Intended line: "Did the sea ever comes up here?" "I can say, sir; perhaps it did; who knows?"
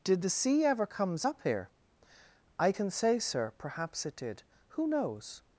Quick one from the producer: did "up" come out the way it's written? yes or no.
yes